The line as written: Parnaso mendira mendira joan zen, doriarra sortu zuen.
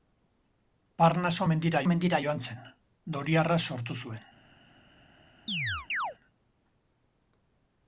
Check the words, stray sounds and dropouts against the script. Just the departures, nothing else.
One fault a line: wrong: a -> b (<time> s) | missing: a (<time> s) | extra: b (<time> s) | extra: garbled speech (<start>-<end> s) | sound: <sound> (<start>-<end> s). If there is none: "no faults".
sound: chirp (5.5-6.2 s)